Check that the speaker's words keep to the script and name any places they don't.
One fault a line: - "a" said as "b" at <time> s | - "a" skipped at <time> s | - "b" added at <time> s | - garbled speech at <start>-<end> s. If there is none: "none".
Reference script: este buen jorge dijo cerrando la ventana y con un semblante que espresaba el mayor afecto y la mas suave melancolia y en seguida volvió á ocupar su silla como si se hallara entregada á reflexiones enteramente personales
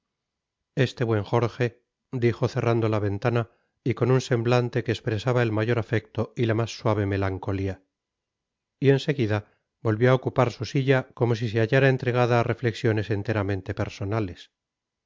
none